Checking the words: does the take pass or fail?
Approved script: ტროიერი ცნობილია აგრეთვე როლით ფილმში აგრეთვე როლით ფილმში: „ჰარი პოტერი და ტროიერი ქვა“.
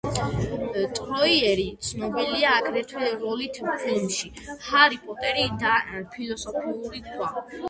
fail